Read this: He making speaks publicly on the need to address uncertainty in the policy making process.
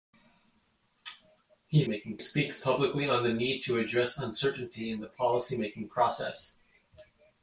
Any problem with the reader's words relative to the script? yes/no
no